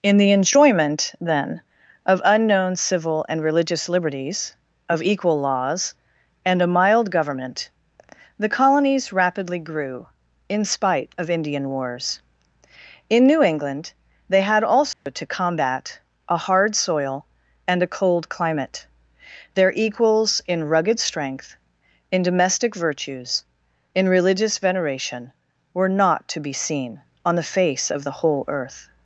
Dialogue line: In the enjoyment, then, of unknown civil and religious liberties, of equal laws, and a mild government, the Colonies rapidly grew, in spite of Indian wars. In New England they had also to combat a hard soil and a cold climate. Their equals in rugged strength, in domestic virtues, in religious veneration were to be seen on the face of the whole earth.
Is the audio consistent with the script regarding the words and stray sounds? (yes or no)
no